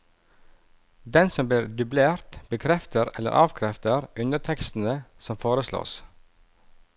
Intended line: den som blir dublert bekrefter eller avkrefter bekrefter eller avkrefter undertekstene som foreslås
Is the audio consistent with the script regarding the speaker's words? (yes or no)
no